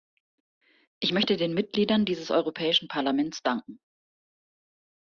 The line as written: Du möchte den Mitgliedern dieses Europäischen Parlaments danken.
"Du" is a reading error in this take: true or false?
true